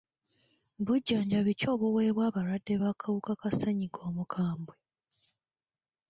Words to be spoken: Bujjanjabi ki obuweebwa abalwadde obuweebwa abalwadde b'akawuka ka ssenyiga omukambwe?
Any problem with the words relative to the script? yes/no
yes